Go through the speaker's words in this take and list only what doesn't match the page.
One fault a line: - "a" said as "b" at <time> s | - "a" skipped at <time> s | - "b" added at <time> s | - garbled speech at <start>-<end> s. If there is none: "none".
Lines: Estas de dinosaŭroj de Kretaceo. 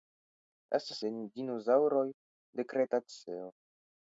none